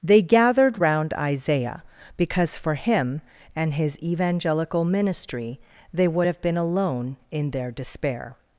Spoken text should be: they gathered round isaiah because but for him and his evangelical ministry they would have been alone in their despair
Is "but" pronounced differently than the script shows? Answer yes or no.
yes